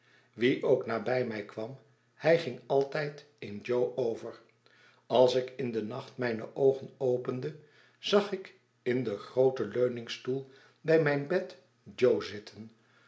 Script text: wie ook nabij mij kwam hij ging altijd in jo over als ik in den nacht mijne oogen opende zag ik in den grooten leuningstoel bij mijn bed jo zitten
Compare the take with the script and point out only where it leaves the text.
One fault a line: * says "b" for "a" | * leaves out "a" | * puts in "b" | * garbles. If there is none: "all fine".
all fine